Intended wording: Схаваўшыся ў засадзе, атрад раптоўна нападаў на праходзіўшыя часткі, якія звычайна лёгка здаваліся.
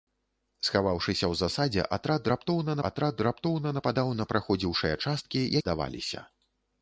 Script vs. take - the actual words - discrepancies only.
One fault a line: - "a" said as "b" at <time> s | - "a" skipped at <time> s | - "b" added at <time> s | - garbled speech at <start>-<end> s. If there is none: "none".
- "атрад раптоўна" added at 2.9 s
- "якія звычайна лёгка" skipped at 5.5 s